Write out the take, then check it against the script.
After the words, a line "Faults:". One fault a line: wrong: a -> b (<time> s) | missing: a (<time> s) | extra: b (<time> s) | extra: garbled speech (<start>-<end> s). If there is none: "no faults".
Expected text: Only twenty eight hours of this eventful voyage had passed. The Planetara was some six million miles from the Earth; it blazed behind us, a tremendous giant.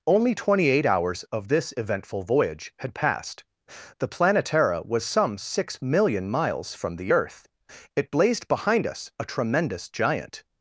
Only twenty eight hours of this eventful voyage had passed. The Planetara was some six million miles from the Earth; it blazed behind us, a tremendous giant.
Faults:
no faults